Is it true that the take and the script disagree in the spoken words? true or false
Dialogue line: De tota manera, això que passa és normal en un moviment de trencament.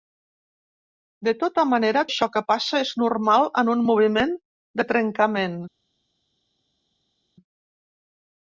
false